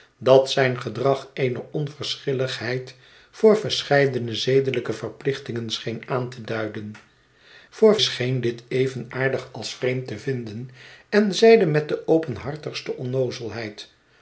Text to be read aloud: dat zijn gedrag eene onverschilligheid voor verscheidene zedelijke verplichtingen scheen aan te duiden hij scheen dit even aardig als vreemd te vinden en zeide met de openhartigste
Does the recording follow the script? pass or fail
fail